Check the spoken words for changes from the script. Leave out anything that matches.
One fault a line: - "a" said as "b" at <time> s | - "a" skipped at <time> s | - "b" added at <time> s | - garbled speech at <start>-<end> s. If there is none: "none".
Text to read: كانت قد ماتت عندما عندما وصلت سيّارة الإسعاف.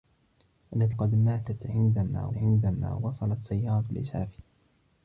none